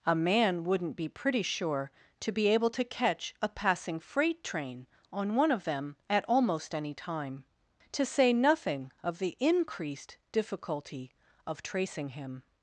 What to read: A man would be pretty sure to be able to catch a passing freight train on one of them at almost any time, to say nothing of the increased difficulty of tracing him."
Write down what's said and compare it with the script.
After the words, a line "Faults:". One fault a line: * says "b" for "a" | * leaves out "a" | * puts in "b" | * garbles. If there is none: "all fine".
A man wouldn't be pretty sure to be able to catch a passing freight train on one of them at almost any time, to say nothing of the increased difficulty of tracing him."
Faults:
* says "wouldn't" for "would"